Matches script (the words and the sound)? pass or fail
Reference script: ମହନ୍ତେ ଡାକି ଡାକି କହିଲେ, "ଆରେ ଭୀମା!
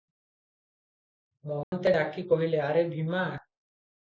fail